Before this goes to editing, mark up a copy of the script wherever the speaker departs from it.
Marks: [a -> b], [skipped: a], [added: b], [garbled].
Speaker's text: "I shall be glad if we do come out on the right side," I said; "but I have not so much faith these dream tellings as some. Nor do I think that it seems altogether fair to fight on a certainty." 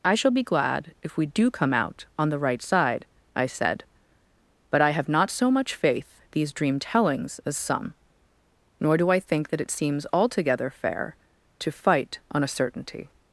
"I shall be glad if we do come out on the right side," I said; "but I have not so much faith these dream tellings as some. Nor do I think that it seems altogether fair to fight on a certainty."